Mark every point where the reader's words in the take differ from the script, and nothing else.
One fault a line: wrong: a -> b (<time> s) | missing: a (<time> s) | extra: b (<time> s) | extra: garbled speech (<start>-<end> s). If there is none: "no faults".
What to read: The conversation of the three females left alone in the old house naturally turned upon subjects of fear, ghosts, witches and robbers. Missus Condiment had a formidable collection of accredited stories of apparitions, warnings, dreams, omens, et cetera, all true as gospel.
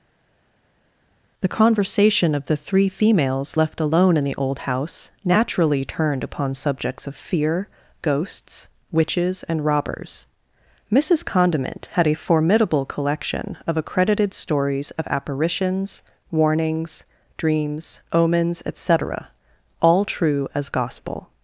no faults